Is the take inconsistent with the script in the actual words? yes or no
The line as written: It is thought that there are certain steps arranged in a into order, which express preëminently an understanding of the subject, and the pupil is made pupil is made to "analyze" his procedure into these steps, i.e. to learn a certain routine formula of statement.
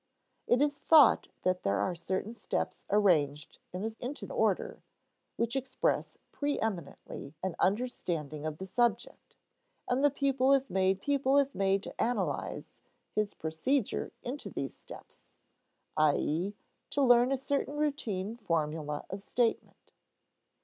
no